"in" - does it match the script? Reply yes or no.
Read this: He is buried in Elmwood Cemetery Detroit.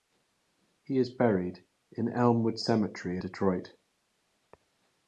yes